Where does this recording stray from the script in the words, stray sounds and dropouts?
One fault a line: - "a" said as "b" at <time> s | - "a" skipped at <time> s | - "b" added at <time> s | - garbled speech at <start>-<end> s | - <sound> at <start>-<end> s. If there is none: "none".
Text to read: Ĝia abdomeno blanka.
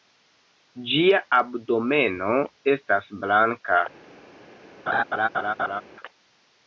- "estas" added at 2.7 s
- laugh at 4.9-5.8 s